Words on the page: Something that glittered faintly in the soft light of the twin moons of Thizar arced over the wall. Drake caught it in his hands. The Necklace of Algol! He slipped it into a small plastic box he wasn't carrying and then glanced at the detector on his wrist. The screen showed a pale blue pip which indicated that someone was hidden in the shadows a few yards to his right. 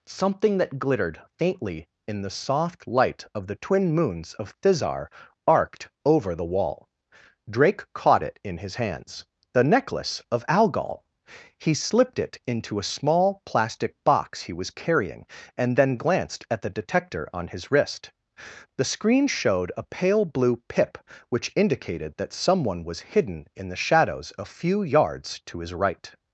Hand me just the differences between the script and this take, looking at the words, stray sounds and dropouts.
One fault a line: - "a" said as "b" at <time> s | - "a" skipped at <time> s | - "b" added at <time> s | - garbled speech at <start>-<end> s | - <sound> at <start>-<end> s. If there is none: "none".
- "wasn't" said as "was" at 14.5 s